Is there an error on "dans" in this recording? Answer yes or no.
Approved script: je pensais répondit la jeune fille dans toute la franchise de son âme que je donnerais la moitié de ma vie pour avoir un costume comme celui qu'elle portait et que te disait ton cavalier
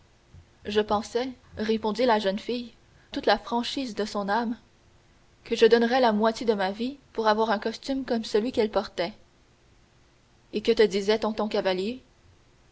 yes